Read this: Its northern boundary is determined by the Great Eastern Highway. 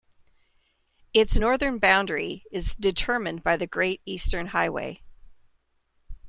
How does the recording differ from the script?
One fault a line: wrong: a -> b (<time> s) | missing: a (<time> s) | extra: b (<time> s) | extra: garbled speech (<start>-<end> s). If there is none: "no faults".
no faults